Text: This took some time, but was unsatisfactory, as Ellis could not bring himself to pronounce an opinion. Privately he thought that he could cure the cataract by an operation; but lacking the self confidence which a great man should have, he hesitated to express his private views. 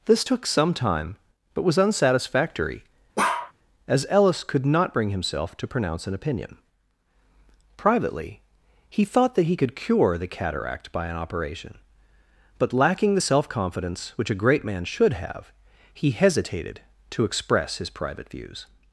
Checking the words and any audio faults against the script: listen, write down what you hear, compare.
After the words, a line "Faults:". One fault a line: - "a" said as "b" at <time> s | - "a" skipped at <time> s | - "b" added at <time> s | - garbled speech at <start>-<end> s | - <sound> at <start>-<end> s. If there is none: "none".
This took some time, but was unsatisfactory, as Ellis could not bring himself to pronounce an opinion. Privately he thought that he could cure the cataract by an operation; but lacking the self confidence which a great man should have, he hesitated to express his private views.
Faults:
- bark at 3.2-3.5 s